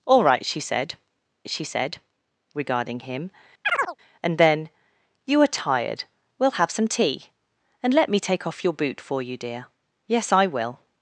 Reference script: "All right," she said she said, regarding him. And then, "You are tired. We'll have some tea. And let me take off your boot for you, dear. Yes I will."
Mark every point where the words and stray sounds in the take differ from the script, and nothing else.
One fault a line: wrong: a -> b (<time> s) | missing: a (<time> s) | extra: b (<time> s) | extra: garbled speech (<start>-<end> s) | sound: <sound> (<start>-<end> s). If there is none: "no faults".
sound: chirp (3.6-4.0 s)